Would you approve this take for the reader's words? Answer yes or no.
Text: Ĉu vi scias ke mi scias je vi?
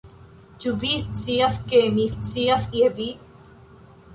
yes